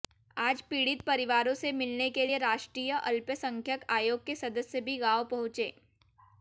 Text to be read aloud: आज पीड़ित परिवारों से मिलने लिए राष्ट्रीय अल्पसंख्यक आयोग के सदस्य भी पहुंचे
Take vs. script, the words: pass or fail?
fail